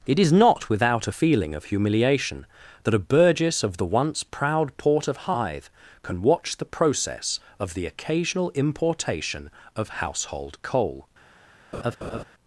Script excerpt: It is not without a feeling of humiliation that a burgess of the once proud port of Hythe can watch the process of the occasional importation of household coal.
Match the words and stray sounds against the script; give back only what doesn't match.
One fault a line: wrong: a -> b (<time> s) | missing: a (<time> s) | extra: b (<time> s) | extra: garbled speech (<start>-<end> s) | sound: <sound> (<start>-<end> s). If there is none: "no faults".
sound: laugh (11.7-12.2 s)